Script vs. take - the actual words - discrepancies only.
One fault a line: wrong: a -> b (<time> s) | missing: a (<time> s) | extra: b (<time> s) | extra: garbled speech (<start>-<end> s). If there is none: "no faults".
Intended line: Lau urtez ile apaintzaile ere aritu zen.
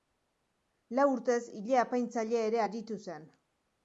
no faults